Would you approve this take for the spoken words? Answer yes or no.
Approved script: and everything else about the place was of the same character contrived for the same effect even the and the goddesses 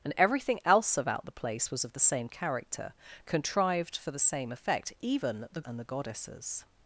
yes